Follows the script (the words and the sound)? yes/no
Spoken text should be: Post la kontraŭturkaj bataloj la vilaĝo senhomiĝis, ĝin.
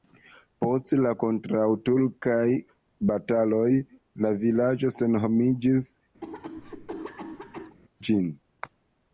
no